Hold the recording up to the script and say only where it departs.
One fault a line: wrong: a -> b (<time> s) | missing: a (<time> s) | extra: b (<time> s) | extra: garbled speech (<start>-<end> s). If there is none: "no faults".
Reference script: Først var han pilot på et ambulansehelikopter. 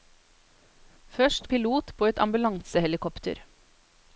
missing: var han (1.5 s)